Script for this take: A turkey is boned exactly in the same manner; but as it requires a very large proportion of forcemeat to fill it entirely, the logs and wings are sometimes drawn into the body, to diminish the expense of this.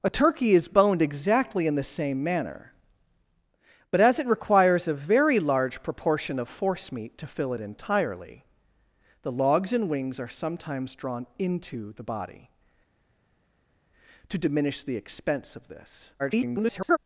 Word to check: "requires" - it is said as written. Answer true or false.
true